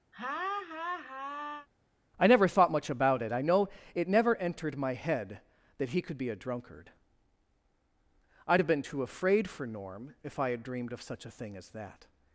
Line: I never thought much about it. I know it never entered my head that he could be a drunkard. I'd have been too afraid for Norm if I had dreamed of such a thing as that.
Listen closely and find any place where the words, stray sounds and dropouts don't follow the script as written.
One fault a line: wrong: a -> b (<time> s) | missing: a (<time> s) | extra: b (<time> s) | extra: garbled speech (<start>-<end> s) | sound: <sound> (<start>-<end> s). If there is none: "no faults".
sound: laugh (0.1-1.7 s)